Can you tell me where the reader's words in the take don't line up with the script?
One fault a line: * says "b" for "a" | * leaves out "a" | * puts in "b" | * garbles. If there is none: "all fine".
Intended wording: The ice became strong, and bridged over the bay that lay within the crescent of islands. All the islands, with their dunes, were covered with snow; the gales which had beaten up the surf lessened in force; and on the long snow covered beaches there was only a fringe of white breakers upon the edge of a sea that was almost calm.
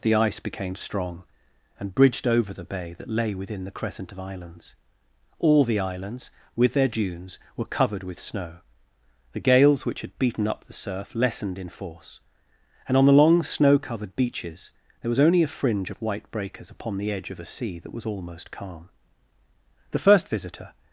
* puts in "The first visitor"